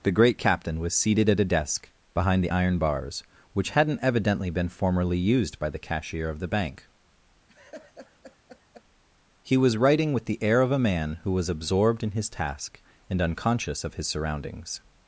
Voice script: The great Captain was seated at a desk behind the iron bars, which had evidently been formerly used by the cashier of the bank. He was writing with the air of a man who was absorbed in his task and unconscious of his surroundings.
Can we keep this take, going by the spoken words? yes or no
no